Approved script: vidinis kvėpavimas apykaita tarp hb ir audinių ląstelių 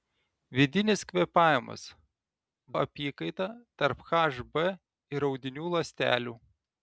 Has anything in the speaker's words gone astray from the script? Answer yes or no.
no